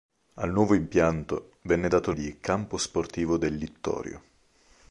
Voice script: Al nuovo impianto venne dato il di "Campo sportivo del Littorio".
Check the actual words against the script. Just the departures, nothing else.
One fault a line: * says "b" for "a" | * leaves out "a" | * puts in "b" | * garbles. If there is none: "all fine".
all fine